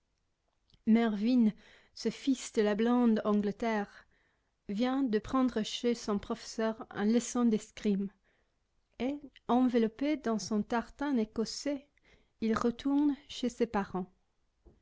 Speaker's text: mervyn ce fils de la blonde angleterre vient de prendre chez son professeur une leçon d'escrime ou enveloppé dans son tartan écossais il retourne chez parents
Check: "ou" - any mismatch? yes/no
yes